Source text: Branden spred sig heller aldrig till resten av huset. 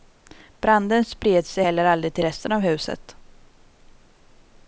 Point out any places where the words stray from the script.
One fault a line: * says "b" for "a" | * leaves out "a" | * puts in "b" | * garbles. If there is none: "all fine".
all fine